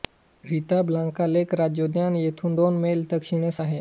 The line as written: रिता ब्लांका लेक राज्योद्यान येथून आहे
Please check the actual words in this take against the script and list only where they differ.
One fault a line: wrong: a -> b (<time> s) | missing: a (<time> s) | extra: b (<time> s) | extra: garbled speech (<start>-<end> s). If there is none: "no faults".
extra: दोन मैल दक्षिणेस (2.5 s)